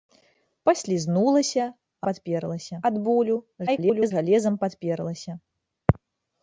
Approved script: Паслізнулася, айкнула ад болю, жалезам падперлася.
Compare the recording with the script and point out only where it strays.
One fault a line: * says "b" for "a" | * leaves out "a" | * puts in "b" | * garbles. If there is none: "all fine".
* says "падперлася" for "айкнула"
* garbles